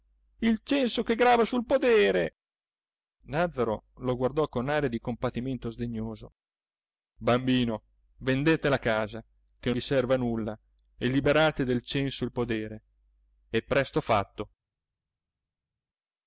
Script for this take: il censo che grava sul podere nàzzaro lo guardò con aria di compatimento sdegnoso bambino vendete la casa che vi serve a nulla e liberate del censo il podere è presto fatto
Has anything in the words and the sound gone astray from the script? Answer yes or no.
no